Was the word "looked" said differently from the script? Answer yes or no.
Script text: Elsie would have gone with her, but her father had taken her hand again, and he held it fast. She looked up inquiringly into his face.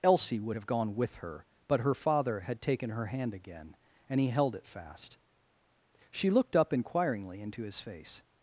no